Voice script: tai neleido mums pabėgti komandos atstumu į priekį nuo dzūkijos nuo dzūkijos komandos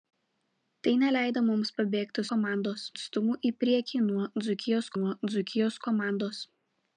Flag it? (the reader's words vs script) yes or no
no